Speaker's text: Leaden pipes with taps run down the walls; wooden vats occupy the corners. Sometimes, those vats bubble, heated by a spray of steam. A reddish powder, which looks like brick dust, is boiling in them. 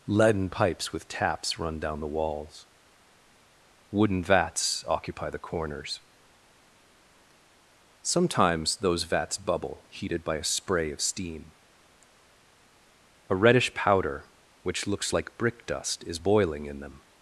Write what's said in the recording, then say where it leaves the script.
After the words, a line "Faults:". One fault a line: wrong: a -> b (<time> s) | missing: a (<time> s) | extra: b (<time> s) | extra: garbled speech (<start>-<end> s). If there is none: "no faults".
Leaden pipes with taps run down the walls; wooden vats occupy the corners. Sometimes, those vats bubble, heated by a spray of steam. A reddish powder, which looks like brick dust, is boiling in them.
Faults:
no faults